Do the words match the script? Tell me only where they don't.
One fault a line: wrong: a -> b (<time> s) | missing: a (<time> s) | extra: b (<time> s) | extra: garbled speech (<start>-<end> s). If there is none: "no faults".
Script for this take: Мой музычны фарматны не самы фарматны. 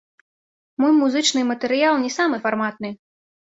wrong: фарматны -> матэрыял (1.5 s)